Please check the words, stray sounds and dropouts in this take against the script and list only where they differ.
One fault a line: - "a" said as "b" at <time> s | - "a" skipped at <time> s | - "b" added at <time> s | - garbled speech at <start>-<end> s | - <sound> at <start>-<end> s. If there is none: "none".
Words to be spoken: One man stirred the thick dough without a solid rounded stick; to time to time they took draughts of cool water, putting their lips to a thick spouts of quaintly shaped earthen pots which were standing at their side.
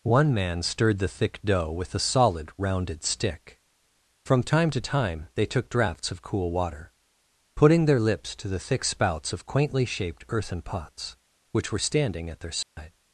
- "without" said as "with" at 1.7 s
- "to" said as "from" at 4.2 s
- "a" said as "the" at 8.5 s
- dropout at 12.6-12.8 s